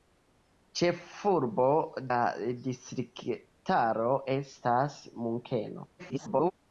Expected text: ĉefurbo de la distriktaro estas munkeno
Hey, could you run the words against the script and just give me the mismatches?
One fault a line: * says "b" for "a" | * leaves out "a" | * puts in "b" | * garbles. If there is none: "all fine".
* leaves out "de"
* garbles